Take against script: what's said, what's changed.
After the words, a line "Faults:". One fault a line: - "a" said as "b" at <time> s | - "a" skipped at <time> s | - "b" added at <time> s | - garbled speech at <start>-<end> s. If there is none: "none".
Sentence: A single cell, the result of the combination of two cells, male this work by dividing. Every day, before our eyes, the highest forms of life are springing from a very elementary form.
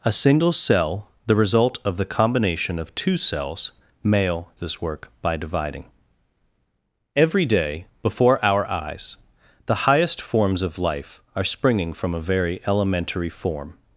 A single cell, the result of the combination of two cells, male this work by dividing. Every day, before our eyes, the highest forms of life are springing from a very elementary form.
Faults:
none